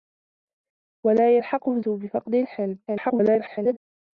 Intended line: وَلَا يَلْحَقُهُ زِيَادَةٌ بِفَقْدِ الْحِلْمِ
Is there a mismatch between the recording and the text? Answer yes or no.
yes